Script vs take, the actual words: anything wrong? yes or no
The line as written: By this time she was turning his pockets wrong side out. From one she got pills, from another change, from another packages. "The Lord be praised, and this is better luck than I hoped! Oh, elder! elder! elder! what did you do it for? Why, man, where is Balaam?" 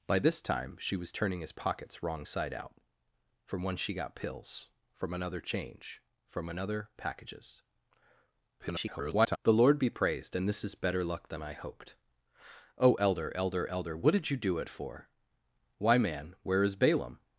yes